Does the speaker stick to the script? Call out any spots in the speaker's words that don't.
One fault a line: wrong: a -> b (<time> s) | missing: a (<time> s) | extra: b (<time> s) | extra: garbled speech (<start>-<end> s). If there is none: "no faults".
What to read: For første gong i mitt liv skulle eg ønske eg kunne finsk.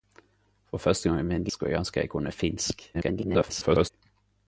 missing: liv (1.5 s)
extra: garbled speech (2.9-3.9 s)